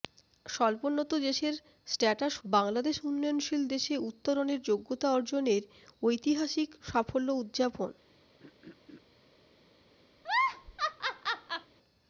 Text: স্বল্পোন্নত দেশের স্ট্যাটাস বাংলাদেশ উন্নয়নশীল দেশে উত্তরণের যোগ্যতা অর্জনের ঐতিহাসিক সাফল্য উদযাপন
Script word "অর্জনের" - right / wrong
right